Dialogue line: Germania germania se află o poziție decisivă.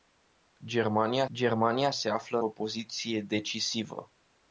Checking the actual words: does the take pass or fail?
pass